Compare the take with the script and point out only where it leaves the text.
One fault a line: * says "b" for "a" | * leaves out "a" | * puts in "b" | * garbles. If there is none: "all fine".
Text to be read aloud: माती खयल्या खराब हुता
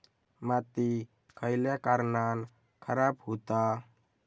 * puts in "कारणान"